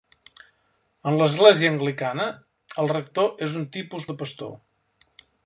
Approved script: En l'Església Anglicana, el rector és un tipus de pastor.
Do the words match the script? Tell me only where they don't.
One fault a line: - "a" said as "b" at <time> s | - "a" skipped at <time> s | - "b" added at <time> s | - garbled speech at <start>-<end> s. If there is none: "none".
none